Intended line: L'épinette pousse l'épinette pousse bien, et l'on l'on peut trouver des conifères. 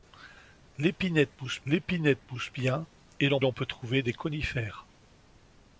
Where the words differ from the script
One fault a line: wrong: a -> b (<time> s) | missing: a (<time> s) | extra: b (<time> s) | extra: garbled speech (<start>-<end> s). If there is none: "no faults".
no faults